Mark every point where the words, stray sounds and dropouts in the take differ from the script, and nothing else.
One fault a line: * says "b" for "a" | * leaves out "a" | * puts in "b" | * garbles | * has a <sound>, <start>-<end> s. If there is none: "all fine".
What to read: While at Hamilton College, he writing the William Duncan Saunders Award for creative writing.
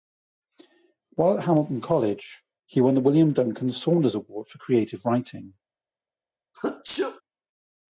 * says "won" for "writing"
* has a sneeze, 6.5-7.2 s